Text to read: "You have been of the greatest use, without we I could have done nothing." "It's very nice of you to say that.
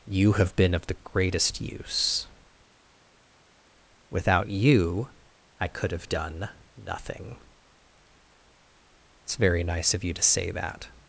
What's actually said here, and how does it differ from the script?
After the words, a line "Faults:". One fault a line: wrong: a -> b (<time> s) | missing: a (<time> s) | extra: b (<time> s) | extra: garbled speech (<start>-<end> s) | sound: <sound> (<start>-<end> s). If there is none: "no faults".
"You have been of the greatest use, without you I could have done nothing." "It's very nice of you to say that.
Faults:
wrong: we -> you (4.5 s)